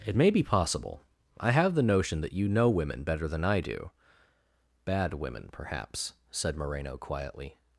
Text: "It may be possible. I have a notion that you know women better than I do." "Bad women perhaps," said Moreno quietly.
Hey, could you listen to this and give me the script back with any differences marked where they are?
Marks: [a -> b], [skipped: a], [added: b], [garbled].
"It may be possible. I have [a -> the] notion that you know women better than I do." "Bad women perhaps," said Moreno quietly.